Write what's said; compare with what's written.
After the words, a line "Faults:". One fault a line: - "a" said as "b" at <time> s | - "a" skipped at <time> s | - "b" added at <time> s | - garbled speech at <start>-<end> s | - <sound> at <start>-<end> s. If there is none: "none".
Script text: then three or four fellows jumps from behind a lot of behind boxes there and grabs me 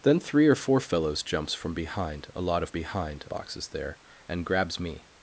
then three or four fellows jumps from behind a lot of behind boxes there and grabs me
Faults:
none